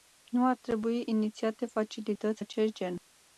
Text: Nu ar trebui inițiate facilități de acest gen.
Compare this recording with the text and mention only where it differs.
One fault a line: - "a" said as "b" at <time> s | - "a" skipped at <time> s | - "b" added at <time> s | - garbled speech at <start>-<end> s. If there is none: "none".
- "de" skipped at 2.4 s